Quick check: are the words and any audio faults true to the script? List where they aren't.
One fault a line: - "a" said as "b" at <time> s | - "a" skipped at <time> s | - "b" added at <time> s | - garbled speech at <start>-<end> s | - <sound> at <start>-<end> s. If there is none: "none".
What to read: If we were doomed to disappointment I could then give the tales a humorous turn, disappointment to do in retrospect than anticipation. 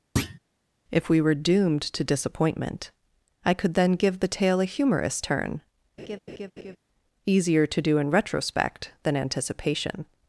- thud at 0.2-0.4 s
- "tales" said as "tale" at 4.3 s
- laugh at 6.0-6.8 s
- "disappointment" said as "easier" at 7.3 s